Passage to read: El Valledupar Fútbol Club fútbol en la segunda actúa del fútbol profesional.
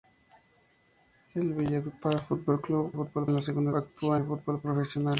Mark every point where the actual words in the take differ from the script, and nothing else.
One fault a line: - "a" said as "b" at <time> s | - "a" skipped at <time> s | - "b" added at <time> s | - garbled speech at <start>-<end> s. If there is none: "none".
none